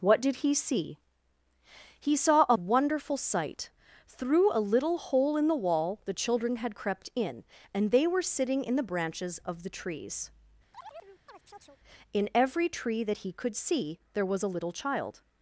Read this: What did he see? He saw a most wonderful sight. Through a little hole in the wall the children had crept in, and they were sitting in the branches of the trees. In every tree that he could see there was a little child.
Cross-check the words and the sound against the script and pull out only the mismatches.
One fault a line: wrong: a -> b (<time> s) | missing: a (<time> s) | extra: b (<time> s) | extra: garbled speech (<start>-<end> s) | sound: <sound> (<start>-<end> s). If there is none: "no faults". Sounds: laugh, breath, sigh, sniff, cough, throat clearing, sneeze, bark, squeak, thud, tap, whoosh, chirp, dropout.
missing: most (2.6 s)
sound: chirp (10.7-11.8 s)